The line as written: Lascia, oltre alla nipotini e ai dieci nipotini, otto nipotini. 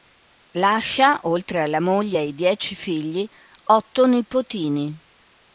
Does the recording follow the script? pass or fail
fail